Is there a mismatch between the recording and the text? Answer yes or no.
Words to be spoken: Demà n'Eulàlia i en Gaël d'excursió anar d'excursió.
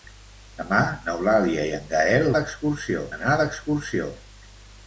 no